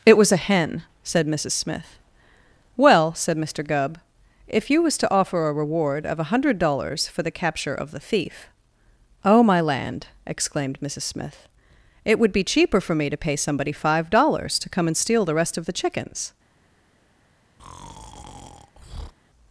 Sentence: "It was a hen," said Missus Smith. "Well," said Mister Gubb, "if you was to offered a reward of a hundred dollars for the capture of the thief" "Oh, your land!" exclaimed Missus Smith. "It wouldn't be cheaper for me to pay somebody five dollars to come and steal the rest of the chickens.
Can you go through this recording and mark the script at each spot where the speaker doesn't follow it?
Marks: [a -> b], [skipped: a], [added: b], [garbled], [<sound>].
"It was a hen," said Missus Smith. "Well," said Mister Gubb, "if you was to [offered -> offer] a reward of a hundred dollars for the capture of the thief" "Oh, [your -> my] land!" exclaimed Missus Smith. "It [wouldn't -> would] be cheaper for me to pay somebody five dollars to come and steal the rest of the chickens. [breath]